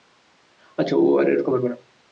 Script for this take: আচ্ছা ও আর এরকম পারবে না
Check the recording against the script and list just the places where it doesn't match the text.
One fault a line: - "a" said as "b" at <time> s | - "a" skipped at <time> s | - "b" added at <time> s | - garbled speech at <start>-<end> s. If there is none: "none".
none